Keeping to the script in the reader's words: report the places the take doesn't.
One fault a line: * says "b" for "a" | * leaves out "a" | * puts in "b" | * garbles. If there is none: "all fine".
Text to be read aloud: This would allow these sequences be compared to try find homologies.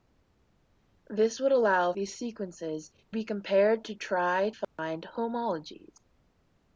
all fine